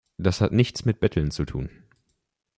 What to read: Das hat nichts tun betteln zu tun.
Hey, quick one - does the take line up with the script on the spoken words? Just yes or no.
no